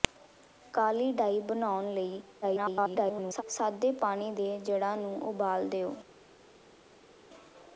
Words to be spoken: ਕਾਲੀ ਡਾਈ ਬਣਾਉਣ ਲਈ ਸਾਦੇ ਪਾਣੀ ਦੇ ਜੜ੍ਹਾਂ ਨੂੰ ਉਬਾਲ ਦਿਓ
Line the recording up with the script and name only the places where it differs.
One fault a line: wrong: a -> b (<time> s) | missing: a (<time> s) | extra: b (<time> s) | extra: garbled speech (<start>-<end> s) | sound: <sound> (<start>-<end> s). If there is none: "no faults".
extra: garbled speech (2.4-3.4 s)